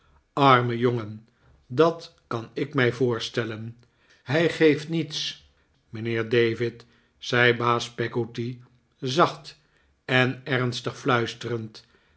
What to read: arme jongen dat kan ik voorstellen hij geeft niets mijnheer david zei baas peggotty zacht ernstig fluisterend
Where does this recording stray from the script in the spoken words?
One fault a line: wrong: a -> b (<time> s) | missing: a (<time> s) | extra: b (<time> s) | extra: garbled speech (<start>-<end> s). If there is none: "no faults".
extra: mij (2.7 s)
extra: en (10.0 s)